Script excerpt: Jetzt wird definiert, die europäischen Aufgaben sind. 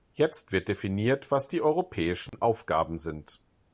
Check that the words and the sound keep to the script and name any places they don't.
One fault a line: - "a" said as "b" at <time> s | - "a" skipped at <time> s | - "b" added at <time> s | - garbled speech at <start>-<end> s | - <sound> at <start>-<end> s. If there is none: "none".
- "was" added at 1.3 s
- dropout at 2.3-2.3 s